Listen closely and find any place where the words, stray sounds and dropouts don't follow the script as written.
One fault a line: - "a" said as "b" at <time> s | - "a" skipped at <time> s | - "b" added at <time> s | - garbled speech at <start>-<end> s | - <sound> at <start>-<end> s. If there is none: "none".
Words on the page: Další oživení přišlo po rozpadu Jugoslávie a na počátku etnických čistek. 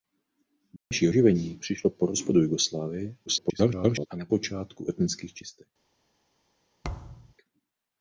- dropout at 0.8-0.9 s
- garbled speech at 3.3-4.1 s
- thud at 6.8-7.3 s